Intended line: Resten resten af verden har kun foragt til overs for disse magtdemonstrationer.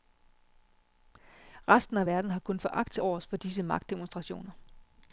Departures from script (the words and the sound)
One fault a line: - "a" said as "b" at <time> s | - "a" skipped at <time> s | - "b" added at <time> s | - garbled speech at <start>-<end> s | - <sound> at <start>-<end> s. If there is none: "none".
- "resten" skipped at 2.0 s